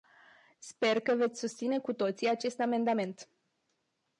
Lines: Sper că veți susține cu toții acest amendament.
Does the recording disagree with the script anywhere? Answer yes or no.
no